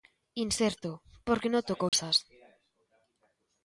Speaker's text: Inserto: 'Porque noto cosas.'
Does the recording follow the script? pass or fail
pass